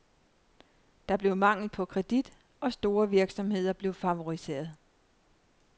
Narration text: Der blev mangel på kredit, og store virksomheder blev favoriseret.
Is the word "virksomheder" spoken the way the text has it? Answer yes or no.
yes